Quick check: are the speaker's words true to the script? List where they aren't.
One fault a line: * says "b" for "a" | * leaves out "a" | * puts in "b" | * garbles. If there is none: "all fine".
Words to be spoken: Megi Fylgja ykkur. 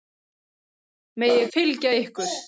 all fine